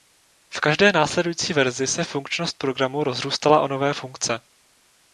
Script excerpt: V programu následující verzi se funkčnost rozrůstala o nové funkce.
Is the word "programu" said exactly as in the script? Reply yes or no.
no